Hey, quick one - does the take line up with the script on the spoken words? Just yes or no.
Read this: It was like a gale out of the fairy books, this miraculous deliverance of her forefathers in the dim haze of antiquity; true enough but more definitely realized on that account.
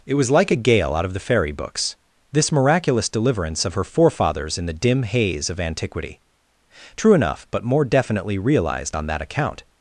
yes